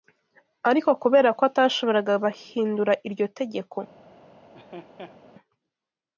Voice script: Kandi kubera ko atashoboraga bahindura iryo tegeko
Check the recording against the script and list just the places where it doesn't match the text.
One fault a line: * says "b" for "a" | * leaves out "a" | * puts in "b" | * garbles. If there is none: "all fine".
* says "Ariko" for "Kandi"